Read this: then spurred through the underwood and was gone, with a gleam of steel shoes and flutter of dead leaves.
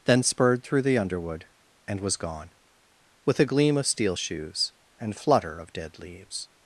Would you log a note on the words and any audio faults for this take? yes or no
no